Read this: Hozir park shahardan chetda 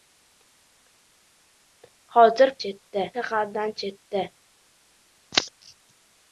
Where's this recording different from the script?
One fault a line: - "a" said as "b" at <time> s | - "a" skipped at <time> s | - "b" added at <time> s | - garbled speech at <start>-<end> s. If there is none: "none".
- "park" said as "chetda" at 2.7 s